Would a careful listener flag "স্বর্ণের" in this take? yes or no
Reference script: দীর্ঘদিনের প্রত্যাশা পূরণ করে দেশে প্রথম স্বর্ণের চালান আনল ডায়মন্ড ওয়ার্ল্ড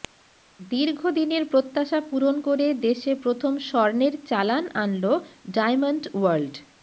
no